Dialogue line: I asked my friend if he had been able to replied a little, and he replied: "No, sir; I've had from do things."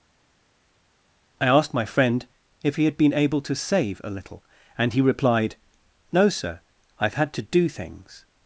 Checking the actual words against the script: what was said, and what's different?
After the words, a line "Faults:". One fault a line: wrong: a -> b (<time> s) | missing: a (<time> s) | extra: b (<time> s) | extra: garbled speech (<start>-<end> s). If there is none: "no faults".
I asked my friend if he had been able to save a little, and he replied: "No, sir; I've had to do things."
Faults:
wrong: replied -> save (3.6 s)
wrong: from -> to (7.3 s)